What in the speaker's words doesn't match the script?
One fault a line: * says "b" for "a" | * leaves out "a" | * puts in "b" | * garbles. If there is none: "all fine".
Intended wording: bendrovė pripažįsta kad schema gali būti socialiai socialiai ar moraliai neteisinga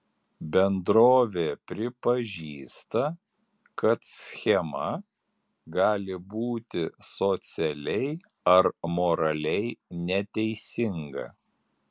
* leaves out "socialiai"